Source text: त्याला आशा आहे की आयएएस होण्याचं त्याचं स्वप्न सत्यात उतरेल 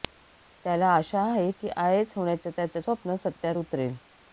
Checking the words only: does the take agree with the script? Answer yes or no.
yes